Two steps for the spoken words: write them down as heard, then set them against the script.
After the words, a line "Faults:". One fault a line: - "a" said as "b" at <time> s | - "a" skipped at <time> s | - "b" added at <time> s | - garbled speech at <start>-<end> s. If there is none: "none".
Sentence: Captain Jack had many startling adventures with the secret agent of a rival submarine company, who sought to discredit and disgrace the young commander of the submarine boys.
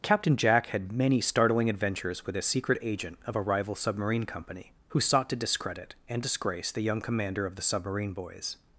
Captain Jack had many startling adventures with a secret agent of a rival submarine company, who sought to discredit and disgrace the young commander of the submarine boys.
Faults:
- "the" said as "a" at 2.4 s